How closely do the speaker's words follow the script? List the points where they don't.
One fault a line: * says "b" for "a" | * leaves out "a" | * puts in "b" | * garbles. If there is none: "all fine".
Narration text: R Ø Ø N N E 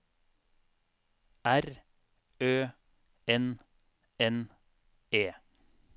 * leaves out "Ø"